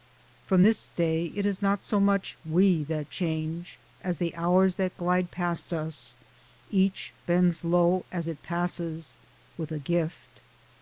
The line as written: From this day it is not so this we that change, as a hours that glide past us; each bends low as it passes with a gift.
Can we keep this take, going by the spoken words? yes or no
no